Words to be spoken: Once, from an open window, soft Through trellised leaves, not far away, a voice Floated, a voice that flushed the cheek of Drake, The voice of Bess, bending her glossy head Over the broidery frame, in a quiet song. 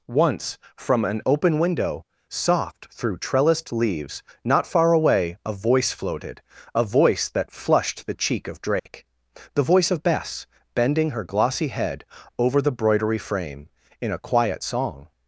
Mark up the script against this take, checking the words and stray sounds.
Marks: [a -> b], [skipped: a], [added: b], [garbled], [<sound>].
Once, from an open window, soft Through trellised leaves, not far away, a voice Floated, a voice that flushed the cheek of Drake, [dropout] The voice of Bess, bending her glossy head Over the broidery frame, in a quiet song.